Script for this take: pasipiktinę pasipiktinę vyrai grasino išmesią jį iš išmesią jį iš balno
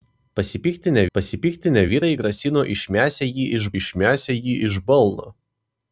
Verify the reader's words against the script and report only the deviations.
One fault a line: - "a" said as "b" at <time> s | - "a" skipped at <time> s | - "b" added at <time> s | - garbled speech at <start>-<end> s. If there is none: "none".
none